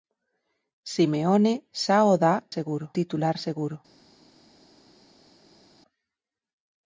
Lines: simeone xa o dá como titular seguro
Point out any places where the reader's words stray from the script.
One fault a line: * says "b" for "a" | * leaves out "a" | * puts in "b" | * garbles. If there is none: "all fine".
* says "seguro" for "como"